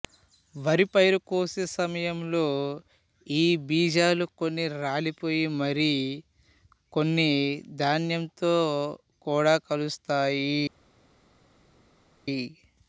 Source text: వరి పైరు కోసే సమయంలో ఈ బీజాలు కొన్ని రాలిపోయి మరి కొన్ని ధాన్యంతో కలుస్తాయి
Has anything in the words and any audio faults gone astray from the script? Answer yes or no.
yes